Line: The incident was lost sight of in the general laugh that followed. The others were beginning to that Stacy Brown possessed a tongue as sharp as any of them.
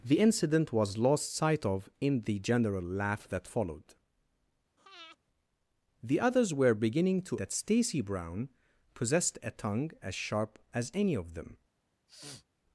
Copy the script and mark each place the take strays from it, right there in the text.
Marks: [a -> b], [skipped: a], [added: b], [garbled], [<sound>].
The incident was lost sight of in the general laugh that followed. [breath] The others were beginning to that Stacy Brown possessed a tongue as sharp as any of them. [sniff]